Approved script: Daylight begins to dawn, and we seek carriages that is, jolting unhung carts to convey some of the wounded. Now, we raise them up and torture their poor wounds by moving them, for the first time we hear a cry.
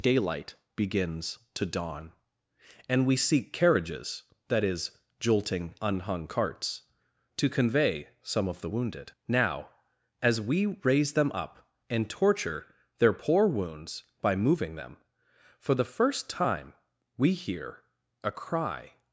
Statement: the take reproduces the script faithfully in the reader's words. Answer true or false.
false